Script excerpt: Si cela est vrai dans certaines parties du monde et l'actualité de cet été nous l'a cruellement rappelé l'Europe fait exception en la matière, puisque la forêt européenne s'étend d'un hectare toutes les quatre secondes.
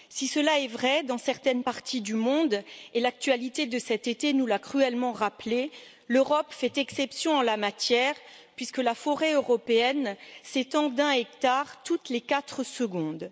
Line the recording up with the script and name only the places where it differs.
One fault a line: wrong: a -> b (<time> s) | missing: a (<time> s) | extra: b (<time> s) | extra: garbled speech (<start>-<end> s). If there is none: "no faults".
no faults